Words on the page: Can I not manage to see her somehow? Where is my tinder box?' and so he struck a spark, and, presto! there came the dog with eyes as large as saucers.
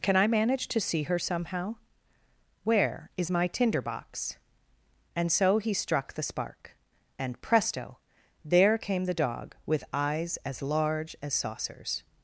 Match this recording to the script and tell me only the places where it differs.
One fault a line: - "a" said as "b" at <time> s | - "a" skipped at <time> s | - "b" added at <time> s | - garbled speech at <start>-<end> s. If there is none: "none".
- "not" skipped at 0.3 s
- "a" said as "the" at 6.1 s